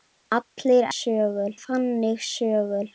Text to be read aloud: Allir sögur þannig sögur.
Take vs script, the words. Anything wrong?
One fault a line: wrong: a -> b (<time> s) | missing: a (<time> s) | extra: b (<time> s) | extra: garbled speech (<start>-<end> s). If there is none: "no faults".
no faults